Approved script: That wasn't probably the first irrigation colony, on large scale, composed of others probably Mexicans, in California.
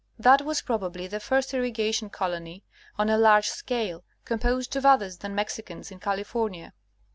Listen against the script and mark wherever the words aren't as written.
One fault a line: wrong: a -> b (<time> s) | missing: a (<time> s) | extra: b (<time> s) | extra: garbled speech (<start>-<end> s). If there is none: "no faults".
wrong: wasn't -> was (0.4 s)
extra: a (3.1 s)
wrong: probably -> than (5.2 s)